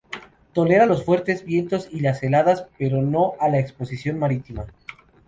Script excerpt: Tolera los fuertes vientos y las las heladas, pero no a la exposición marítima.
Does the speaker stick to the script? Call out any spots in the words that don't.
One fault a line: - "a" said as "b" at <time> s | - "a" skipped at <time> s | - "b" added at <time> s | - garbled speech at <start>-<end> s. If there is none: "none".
- "las" skipped at 2.2 s